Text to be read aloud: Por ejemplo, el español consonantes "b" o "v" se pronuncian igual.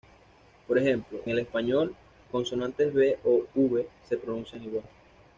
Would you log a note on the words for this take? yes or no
no